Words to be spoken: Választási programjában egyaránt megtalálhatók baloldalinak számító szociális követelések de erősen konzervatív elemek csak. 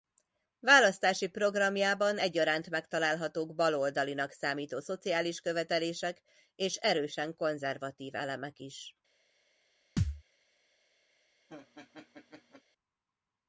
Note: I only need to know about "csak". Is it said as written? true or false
false